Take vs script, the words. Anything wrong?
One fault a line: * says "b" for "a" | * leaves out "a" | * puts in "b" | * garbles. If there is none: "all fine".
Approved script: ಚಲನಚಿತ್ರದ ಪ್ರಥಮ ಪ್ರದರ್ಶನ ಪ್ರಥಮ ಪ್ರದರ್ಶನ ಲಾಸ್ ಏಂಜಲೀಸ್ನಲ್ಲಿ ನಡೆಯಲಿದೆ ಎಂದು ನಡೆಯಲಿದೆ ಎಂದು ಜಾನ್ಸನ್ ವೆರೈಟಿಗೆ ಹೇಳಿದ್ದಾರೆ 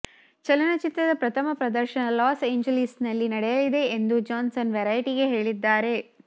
* leaves out "ಪ್ರಥಮ ಪ್ರದರ್ಶನ"
* leaves out "ನಡೆಯಲಿದೆ ಎಂದು"